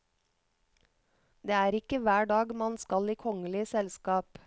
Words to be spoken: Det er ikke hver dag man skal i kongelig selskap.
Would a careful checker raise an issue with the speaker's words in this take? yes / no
no